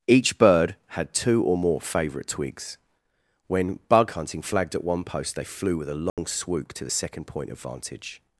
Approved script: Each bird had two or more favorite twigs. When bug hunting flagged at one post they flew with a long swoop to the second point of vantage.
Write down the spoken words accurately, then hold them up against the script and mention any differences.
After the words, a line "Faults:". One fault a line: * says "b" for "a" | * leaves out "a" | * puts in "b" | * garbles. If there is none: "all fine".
Each bird had two or more favorite twigs. When bug hunting flagged at one post they flew with a long swoop to the second point of vantage.
Faults:
all fine